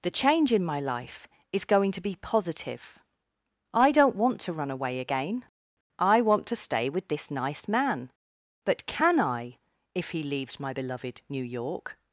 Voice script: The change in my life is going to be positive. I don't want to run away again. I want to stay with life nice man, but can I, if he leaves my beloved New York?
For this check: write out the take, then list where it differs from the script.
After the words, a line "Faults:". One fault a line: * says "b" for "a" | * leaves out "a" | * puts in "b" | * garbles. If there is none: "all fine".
The change in my life is going to be positive. I don't want to run away again. I want to stay with this nice man, but can I, if he leaves my beloved New York?
Faults:
* says "this" for "life"